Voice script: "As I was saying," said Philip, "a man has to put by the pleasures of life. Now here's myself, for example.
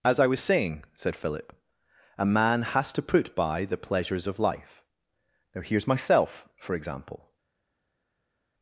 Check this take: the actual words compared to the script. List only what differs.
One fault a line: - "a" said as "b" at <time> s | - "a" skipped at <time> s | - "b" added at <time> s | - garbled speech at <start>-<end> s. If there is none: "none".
none